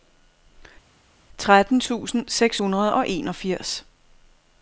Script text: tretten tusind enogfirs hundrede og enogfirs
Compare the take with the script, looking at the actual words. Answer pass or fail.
fail